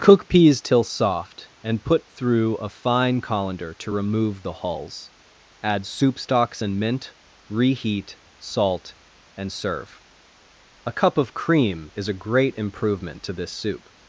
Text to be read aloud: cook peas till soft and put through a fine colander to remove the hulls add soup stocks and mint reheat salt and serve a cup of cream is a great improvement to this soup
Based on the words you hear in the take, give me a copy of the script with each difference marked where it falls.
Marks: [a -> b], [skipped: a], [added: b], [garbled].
cook peas till soft and put through a fine colander to remove the hulls add soup stocks and mint reheat salt and serve a cup of cream is a great improvement to this soup